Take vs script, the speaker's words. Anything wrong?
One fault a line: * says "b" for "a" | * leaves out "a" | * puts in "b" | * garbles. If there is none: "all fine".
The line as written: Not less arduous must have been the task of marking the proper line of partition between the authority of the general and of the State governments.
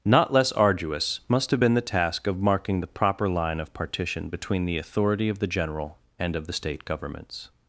all fine